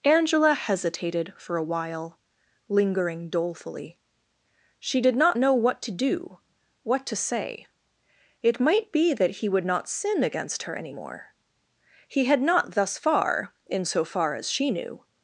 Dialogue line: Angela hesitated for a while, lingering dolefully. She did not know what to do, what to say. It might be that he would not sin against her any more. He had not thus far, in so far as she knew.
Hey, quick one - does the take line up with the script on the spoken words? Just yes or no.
yes